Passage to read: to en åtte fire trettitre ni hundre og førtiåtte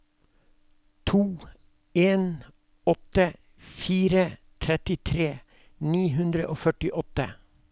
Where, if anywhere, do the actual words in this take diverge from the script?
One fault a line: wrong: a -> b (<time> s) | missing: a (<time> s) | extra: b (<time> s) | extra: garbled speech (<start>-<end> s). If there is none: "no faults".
no faults